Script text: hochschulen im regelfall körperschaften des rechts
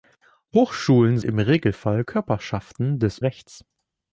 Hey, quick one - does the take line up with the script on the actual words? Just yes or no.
yes